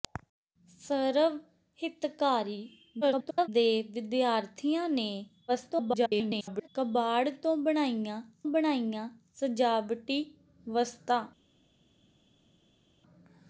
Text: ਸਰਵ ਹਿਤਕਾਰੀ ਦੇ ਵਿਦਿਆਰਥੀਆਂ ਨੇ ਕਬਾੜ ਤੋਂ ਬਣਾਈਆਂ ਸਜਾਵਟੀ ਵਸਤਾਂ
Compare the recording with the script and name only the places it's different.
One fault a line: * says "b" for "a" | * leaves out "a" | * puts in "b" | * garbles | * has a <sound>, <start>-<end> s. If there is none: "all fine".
* garbles
* garbles
* puts in "ਬਣਾਈਆਂ"